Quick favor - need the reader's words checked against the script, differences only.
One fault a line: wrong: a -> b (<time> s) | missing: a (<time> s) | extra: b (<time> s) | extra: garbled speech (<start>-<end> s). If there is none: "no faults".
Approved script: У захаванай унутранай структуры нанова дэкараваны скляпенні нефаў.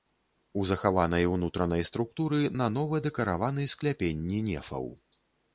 no faults